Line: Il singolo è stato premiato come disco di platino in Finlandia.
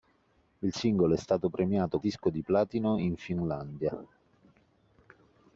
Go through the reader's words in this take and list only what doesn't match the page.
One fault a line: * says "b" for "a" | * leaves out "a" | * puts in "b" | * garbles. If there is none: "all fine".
* leaves out "come"